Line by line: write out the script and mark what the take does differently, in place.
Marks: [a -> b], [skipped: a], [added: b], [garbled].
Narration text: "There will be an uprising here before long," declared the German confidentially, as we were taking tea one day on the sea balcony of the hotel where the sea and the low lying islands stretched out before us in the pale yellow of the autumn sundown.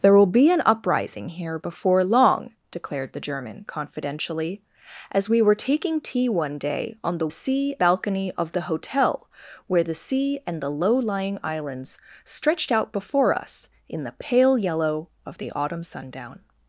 "There will be an uprising here before long," declared the German confidentially, as we were taking tea one day on the sea balcony of the hotel where the sea and the low lying islands stretched out before us in the pale yellow of the autumn sundown.